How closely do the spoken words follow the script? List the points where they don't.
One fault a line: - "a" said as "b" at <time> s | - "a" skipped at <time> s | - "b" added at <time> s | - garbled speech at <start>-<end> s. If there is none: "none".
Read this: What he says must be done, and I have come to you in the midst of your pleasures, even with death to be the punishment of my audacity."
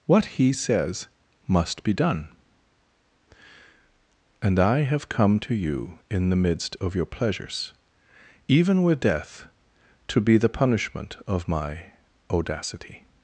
none